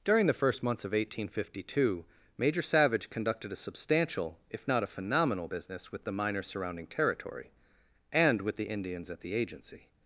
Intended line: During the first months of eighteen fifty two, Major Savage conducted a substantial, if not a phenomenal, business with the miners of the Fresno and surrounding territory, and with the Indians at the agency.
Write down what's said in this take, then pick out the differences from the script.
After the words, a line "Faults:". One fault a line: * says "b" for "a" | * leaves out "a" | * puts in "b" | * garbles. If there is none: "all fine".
During the first months of eighteen fifty two, Major Savage conducted a substantial, if not a phenomenal, business with the miners surrounding territory, and with the Indians at the agency.
Faults:
* leaves out "of the Fresno and"